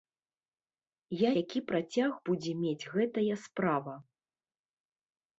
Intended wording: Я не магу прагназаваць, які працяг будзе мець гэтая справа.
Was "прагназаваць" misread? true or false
true